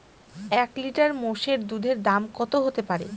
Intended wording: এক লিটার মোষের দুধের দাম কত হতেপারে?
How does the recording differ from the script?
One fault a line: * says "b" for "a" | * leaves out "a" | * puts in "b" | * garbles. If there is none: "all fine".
all fine